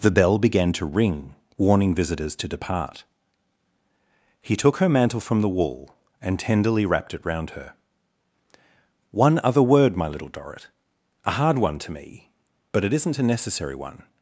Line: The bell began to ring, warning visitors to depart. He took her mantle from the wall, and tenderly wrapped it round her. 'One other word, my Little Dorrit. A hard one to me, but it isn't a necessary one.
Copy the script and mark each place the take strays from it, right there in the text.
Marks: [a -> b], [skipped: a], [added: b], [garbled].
The bell began to ring, warning visitors to depart. He took her mantle from the wall, and tenderly wrapped it round her. 'One other word, my Little Dorrit. A hard one to me, but it isn't a necessary one.